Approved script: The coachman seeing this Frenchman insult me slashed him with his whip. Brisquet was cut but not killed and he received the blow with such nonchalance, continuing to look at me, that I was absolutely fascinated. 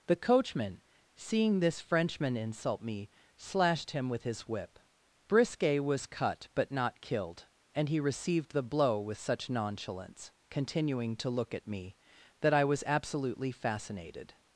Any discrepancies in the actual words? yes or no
no